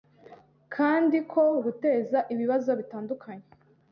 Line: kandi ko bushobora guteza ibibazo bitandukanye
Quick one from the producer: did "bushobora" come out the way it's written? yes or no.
no